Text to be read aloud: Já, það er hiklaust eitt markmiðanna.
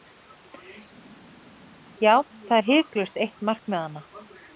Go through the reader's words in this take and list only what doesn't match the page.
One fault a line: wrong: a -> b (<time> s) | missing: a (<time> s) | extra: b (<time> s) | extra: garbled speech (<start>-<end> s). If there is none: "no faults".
no faults